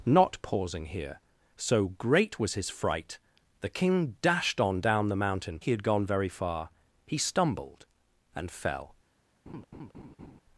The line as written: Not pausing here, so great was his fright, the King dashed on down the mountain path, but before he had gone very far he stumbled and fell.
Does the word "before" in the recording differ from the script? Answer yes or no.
yes